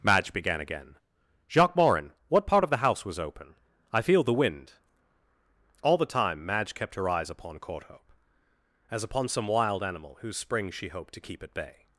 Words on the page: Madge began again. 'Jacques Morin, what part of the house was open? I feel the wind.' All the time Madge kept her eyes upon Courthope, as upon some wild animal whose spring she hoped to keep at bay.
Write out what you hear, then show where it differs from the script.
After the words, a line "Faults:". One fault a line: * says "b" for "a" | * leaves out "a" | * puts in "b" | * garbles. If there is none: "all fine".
Madge began again. 'Jacques Morin, what part of the house was open? I feel the wind.' All the time Madge kept her eyes upon Courthope, as upon some wild animal whose spring she hoped to keep at bay.
Faults:
all fine